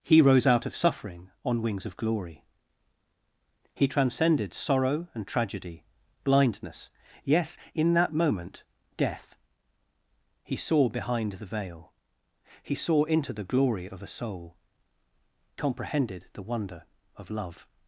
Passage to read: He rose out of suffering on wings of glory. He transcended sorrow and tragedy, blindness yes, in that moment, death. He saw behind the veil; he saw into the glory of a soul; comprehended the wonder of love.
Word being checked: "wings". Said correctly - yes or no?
yes